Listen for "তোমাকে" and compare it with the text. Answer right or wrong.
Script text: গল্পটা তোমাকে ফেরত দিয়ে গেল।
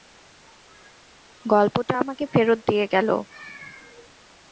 wrong